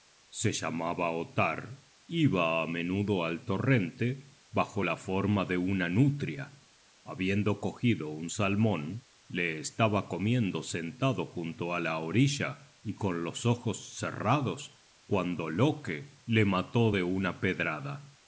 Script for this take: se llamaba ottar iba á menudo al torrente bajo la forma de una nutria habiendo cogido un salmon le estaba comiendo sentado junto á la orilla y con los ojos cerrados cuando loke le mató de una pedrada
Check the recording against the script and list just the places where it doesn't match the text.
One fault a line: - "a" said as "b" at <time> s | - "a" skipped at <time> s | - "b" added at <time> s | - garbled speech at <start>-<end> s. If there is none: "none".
none